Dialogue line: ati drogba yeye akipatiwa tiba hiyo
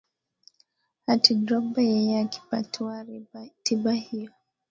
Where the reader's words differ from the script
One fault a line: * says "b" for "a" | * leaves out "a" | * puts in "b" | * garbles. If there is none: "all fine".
all fine